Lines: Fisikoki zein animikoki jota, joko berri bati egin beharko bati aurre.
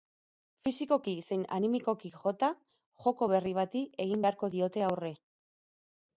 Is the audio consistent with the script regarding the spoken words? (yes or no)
no